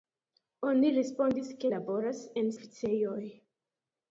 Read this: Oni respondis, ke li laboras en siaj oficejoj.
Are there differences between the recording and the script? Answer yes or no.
yes